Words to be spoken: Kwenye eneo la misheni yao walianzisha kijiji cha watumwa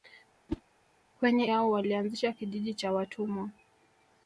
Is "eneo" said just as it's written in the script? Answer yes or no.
no